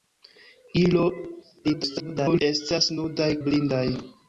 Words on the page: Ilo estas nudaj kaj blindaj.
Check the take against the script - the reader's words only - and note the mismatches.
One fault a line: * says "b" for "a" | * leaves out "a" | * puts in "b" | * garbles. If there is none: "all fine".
* garbles
* leaves out "kaj"